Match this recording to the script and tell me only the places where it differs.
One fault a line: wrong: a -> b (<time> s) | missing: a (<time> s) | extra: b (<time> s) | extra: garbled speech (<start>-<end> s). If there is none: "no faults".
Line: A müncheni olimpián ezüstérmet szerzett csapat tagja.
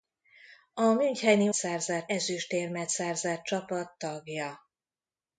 wrong: olimpián -> szerzett (1.5 s)